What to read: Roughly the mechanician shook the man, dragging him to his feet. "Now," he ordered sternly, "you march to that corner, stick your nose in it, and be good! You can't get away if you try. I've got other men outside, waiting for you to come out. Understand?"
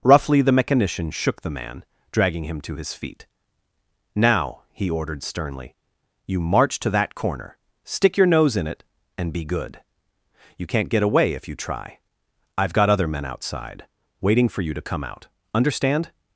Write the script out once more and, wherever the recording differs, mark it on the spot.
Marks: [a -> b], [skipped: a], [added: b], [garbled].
Roughly the mechanician shook the man, dragging him to his feet. "Now," he ordered sternly, "you march to that corner, stick your nose in it, and be good! You can't get away if you try. I've got other men outside, waiting for you to come out. Understand?"